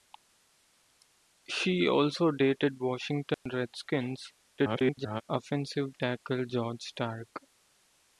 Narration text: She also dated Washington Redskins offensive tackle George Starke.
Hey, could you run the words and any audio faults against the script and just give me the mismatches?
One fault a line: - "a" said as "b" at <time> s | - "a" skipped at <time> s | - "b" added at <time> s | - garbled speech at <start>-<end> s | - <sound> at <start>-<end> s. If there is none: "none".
- dropout at 3.3-3.5 s
- garbled speech at 4.6-5.2 s